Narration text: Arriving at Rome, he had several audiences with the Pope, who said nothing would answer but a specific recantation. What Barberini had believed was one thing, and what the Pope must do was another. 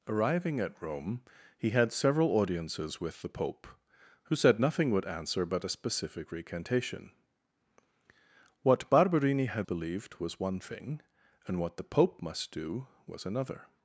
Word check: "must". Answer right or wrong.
right